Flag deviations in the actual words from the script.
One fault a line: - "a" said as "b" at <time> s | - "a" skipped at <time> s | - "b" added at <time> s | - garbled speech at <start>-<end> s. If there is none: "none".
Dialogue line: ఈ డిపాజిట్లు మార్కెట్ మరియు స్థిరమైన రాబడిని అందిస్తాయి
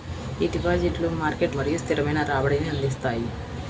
none